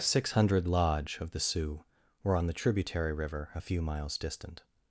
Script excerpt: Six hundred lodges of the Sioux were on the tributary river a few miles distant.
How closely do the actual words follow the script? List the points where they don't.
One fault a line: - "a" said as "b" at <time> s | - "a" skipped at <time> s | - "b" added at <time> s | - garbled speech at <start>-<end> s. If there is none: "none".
- "lodges" said as "lodge" at 0.7 s